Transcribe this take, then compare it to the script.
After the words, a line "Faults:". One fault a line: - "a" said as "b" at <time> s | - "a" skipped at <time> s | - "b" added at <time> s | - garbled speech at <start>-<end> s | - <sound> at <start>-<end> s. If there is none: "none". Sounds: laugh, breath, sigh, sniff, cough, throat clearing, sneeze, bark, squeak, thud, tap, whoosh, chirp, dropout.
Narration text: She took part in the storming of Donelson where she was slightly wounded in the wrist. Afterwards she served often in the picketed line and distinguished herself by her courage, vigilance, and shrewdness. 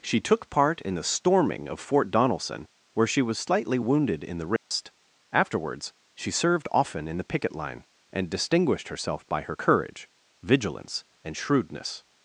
She took part in the storming of Fort Donelson where she was slightly wounded in the wrist. Afterwards she served often in the picket line and distinguished herself by her courage, vigilance, and shrewdness.
Faults:
- "Fort" added at 1.8 s
- dropout at 4.6-4.7 s
- "picketed" said as "picket" at 7.3 s